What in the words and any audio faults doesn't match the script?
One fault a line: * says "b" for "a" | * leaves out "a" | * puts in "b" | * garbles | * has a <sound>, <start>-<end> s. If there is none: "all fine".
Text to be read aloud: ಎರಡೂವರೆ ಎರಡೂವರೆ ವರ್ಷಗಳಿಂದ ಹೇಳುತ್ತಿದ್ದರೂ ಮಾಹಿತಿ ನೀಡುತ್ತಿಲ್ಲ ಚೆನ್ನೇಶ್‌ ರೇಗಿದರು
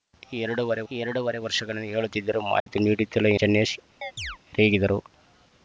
* has a dropout, 2.6-2.7 s
* has a chirp, 4.0-4.4 s